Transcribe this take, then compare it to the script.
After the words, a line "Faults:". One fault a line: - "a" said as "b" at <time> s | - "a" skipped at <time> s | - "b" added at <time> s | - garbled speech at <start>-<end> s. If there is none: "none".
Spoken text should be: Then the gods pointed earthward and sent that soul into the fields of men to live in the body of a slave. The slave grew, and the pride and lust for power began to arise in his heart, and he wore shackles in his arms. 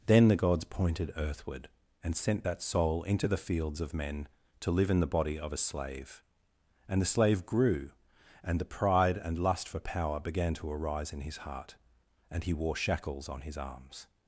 Then the gods pointed earthward and sent that soul into the fields of men to live in the body of a slave. And the slave grew, and the pride and lust for power began to arise in his heart, and he wore shackles on his arms.
Faults:
- "And" added at 6.9 s
- "in" said as "on" at 13.3 s